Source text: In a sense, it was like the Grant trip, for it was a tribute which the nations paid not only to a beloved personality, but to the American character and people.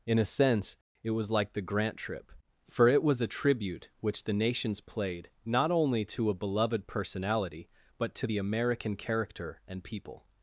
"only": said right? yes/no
yes